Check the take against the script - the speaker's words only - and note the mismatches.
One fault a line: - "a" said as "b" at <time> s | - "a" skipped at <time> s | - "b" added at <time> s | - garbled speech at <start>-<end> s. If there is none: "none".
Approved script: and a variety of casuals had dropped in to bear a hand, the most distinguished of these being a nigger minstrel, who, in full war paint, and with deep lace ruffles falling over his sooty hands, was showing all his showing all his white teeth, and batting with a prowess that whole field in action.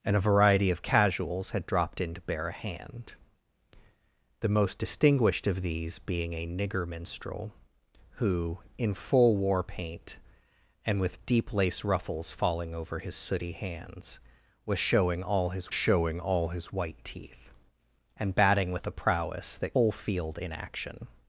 none